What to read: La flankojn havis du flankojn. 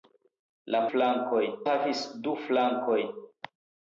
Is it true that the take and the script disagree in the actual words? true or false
false